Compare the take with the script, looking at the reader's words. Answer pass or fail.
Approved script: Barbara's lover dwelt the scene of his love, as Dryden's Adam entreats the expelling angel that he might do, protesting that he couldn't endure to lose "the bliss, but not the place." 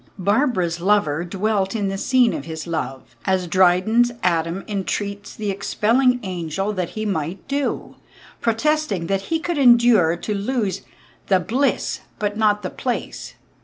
fail